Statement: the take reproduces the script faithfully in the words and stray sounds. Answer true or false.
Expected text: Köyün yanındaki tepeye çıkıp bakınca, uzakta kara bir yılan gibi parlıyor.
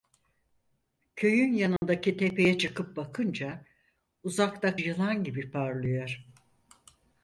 false